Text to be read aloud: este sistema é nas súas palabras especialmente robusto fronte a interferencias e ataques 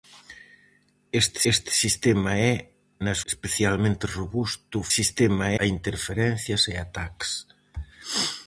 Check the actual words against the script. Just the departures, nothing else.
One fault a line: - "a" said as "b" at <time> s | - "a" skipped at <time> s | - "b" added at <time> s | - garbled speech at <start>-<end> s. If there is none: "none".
- "este" added at 1.5 s
- "súas palabras" skipped at 3.2 s
- "fronte" said as "sistema" at 5.0 s